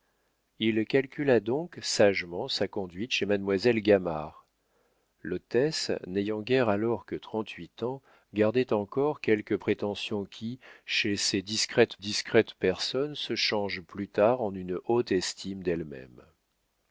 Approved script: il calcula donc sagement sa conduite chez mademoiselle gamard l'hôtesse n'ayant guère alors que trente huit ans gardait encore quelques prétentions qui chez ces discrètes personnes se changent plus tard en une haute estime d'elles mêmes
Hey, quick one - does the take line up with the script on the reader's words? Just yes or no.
no